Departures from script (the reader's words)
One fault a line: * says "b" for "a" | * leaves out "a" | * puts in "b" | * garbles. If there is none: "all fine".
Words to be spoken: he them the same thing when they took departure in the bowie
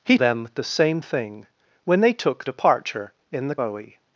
all fine